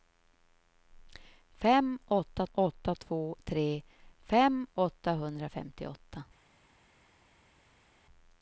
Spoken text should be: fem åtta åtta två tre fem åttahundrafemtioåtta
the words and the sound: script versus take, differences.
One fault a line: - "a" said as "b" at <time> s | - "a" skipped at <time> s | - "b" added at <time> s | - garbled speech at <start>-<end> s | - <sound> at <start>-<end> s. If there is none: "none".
none